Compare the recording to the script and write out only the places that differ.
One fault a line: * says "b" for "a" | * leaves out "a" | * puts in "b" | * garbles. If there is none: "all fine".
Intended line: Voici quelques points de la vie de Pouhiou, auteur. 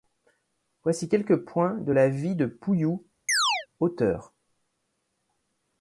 all fine